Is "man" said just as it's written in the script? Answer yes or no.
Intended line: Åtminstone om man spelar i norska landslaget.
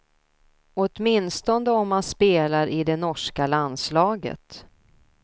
yes